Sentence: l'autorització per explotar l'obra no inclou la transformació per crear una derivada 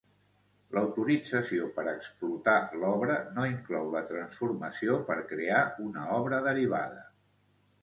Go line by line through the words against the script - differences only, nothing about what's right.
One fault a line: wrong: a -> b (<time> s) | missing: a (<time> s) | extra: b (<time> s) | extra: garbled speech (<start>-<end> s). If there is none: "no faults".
extra: obra (6.2 s)